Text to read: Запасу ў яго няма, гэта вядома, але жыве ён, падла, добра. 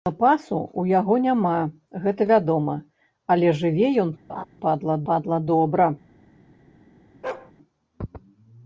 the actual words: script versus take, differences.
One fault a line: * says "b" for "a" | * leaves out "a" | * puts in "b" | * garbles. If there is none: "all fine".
* puts in "падла"